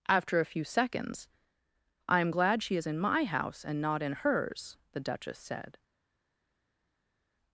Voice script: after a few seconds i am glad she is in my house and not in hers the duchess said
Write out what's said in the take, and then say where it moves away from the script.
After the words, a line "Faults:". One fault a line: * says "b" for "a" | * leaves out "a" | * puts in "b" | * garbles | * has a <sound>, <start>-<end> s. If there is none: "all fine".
after a few seconds i am glad she is in my house and not in hers the duchess said
Faults:
all fine